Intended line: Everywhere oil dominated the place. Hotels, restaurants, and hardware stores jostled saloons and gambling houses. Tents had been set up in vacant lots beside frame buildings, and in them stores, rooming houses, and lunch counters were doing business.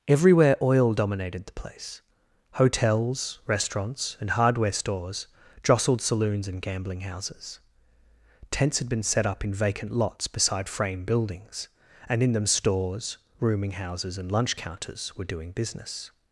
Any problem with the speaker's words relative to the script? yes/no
no